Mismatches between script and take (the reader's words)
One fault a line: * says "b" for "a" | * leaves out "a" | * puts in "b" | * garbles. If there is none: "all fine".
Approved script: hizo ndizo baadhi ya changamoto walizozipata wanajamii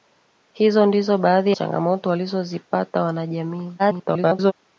* leaves out "ya"
* garbles